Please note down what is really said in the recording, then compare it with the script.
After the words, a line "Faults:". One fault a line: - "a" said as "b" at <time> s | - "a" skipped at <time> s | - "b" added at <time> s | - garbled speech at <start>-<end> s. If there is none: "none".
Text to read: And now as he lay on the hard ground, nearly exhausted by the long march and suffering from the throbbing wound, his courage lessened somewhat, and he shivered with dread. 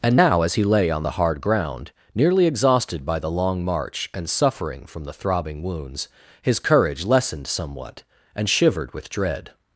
And now as he lay on the hard ground, nearly exhausted by the long march and suffering from the throbbing wounds, his courage lessened somewhat, and shivered with dread.
Faults:
- "wound" said as "wounds" at 5.6 s
- "he" skipped at 8.5 s